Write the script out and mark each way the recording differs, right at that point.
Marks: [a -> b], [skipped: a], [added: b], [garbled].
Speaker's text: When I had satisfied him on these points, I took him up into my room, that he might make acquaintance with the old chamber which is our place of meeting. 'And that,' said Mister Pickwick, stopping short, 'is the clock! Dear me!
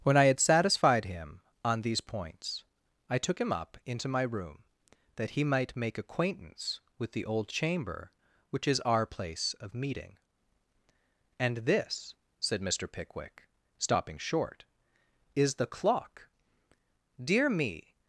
When I had satisfied him on these points, I took him up into my room, that he might make acquaintance with the old chamber which is our place of meeting. 'And [that,' -> this] said Mister Pickwick, stopping short, 'is the clock! Dear me!